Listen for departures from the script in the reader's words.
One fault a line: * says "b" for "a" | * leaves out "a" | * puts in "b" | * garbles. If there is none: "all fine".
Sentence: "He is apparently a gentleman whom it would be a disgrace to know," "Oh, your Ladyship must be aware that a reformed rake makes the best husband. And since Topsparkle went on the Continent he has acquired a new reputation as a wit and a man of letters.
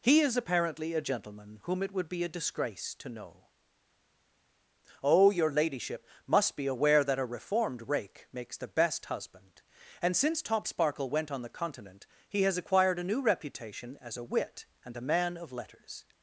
all fine